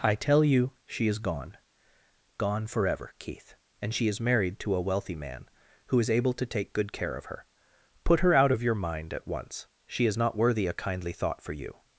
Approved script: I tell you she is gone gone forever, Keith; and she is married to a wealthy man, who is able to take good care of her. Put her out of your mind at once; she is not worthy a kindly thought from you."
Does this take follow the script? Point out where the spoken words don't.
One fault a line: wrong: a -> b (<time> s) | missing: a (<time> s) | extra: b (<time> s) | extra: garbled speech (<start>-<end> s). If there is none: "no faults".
wrong: from -> for (11.4 s)